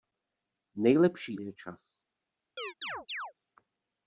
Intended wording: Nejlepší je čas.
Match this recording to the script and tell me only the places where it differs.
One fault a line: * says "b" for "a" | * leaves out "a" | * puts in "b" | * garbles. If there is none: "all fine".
all fine